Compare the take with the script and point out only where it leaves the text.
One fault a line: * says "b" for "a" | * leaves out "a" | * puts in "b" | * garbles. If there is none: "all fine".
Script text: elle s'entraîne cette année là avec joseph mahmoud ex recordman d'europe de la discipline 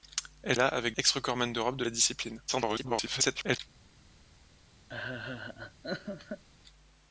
* leaves out "s'entraîne cette année"
* leaves out "joseph mahmoud"
* garbles